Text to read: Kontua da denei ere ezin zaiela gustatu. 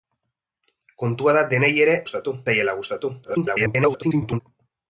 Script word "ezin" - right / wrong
wrong